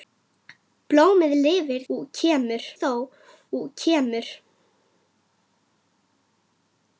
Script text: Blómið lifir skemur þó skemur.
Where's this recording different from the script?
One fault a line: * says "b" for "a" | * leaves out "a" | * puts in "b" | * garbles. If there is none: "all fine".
all fine